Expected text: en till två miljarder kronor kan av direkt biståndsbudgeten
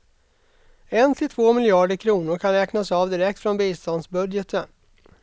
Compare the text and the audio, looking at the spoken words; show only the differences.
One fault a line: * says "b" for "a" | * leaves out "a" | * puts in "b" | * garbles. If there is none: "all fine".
* puts in "räknas"
* puts in "från"